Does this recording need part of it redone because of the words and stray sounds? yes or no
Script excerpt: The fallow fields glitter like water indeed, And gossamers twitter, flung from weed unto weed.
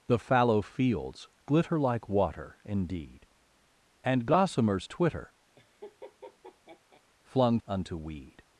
yes